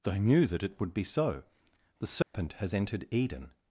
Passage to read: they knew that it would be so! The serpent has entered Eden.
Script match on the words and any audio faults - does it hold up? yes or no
no